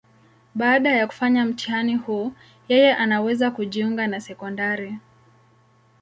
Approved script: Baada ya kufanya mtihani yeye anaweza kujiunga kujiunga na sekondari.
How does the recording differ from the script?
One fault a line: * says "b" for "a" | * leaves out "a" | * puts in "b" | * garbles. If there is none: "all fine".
* puts in "huu"
* leaves out "kujiunga"